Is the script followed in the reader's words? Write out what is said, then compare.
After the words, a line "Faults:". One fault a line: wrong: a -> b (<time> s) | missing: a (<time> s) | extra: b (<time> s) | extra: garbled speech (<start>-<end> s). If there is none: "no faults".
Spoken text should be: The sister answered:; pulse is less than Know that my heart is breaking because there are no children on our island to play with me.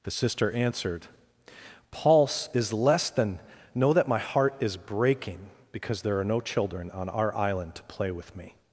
The sister answered:; pulse is less than Know that my heart is breaking because there are no children on our island to play with me.
Faults:
no faults